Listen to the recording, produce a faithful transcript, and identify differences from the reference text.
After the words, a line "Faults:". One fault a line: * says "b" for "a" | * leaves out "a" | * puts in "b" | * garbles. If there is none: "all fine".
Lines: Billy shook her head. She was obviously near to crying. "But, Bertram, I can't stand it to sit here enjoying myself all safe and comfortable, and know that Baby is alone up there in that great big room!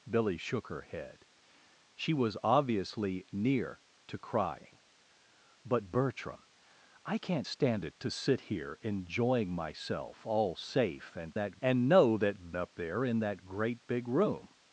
Billy shook her head. She was obviously near to crying. "But, Bertram, I can't stand it to sit here enjoying myself all safe and that, and know that Up there in that great big room!
Faults:
* says "that" for "comfortable"
* leaves out "Baby is alone"